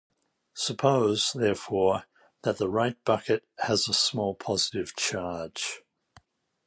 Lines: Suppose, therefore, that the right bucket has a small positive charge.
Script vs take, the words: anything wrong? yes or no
no